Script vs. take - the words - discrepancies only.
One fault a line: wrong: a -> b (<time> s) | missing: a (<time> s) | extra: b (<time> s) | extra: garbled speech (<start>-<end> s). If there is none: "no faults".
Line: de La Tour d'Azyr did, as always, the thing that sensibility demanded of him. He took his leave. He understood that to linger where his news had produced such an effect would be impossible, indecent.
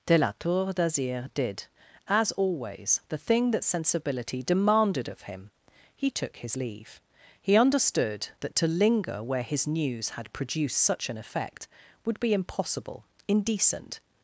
no faults